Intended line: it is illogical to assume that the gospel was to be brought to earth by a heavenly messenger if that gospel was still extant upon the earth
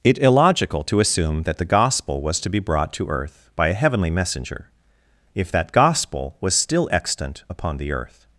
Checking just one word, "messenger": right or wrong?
right